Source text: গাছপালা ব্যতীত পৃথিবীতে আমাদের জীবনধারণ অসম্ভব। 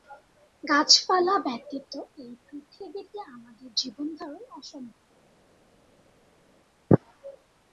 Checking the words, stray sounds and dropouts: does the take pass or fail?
fail